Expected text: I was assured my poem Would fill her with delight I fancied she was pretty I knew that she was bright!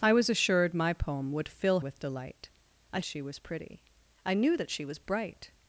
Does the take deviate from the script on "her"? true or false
true